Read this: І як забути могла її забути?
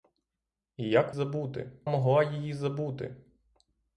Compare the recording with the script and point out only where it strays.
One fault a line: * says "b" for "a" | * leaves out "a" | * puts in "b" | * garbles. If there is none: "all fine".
all fine